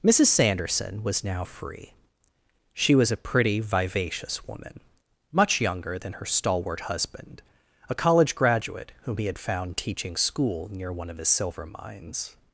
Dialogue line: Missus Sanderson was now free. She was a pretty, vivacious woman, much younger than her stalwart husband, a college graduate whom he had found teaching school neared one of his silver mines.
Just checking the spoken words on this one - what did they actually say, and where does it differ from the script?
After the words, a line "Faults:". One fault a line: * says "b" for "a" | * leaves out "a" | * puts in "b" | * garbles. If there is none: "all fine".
Missus Sanderson was now free. She was a pretty, vivacious woman, much younger than her stalwart husband, a college graduate whom he had found teaching school near one of his silver mines.
Faults:
* says "near" for "neared"